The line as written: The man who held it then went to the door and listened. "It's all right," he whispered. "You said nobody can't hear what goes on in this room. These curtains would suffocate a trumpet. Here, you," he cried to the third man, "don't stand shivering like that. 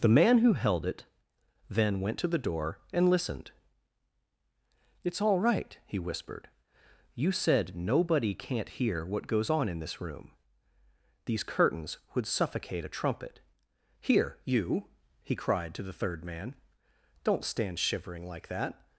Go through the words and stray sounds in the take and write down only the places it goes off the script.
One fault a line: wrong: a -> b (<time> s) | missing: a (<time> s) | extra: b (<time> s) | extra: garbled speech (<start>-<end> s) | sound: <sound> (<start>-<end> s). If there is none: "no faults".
no faults